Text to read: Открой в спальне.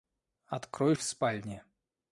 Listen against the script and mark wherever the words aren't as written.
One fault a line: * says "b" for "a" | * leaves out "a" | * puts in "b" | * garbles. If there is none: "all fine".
all fine